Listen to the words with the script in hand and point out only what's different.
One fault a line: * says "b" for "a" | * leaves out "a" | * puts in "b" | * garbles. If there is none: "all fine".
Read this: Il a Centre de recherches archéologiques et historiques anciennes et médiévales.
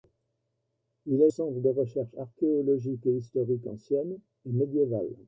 all fine